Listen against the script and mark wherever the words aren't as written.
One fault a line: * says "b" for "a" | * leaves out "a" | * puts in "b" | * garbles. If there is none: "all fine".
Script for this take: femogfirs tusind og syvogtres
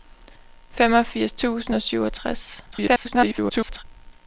* garbles